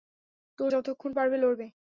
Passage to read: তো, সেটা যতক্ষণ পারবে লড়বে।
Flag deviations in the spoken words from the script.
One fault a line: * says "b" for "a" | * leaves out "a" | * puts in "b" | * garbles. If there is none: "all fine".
* leaves out "সেটা"